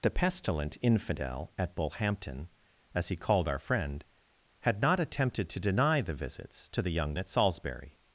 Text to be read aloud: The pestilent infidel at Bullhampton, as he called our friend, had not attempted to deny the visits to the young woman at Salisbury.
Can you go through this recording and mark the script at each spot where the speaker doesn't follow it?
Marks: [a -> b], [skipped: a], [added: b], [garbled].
The pestilent infidel at Bullhampton, as he called our friend, had not attempted to deny the visits to the young [skipped: woman] at Salisbury.